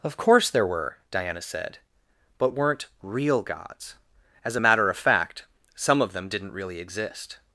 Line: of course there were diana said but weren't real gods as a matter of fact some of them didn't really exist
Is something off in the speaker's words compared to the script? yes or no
no